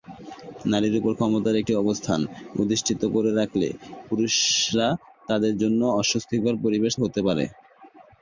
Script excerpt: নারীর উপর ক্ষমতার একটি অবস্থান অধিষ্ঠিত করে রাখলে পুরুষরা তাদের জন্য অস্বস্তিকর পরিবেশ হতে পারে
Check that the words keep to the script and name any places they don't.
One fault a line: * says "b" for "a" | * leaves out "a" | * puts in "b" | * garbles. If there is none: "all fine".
all fine